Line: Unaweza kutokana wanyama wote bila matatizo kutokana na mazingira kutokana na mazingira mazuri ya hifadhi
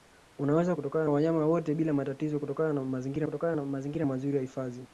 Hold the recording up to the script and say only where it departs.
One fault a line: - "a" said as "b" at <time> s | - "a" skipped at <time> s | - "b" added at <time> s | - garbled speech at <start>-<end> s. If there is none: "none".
none